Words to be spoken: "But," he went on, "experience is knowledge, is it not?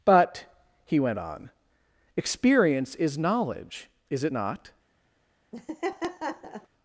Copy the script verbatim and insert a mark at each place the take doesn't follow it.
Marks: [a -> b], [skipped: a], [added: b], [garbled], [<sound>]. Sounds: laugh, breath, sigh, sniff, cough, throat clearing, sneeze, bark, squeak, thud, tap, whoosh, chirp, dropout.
"But," he went on, "experience is knowledge, is it not? [laugh]